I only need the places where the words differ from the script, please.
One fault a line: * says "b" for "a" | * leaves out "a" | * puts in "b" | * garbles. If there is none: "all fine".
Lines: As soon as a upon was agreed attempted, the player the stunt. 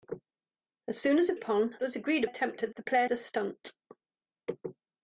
all fine